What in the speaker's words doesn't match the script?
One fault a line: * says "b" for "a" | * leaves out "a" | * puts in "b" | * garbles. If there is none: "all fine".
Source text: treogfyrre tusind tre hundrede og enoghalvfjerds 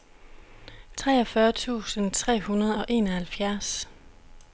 all fine